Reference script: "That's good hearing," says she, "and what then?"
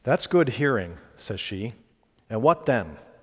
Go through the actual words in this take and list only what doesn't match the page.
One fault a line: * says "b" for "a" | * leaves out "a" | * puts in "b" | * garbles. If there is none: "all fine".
all fine